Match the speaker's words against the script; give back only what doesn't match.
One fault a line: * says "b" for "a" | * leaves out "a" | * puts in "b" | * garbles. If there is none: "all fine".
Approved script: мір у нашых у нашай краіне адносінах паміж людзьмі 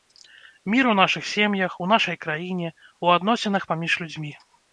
* puts in "сем'ях"
* puts in "у"